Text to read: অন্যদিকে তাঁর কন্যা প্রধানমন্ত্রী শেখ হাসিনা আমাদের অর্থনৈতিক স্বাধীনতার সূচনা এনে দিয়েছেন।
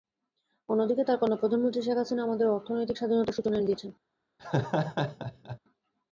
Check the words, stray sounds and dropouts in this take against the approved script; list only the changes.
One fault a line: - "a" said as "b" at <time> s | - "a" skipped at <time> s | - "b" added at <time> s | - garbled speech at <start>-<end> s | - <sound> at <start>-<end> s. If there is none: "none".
- laugh at 4.4-5.6 s